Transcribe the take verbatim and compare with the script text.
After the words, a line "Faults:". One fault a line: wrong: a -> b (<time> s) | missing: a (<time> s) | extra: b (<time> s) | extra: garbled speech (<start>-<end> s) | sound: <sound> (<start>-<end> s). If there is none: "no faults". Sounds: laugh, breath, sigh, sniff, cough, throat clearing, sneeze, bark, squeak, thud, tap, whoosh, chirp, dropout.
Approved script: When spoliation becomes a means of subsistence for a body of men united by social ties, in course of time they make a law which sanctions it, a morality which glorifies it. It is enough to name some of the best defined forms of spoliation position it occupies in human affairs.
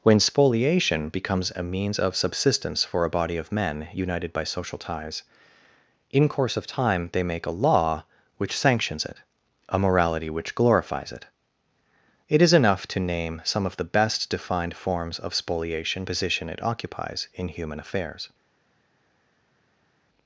When spoliation becomes a means of subsistence for a body of men united by social ties, in course of time they make a law which sanctions it, a morality which glorifies it. It is enough to name some of the best defined forms of spoliation position it occupies in human affairs.
Faults:
no faults